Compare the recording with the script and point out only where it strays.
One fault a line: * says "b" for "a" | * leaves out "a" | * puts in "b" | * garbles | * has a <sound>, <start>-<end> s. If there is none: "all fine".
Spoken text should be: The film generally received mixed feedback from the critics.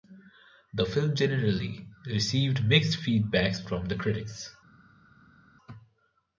all fine